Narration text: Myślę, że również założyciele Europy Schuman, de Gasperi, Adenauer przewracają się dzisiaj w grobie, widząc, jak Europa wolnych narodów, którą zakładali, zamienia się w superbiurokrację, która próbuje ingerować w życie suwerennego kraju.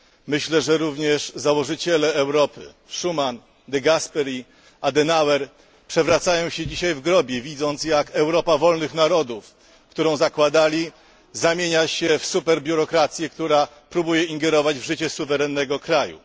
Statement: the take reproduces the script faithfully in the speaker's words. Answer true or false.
true